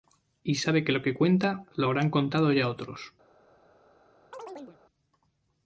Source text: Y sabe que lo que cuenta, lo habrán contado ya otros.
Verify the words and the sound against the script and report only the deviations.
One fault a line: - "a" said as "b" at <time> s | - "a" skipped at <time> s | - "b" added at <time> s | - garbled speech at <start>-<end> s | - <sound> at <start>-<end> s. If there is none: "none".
- chirp at 4.3-4.8 s